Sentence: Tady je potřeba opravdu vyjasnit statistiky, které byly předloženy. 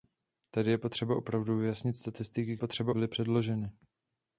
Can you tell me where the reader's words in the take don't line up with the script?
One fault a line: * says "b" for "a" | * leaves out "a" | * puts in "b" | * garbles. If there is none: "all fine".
* says "potřeba" for "které"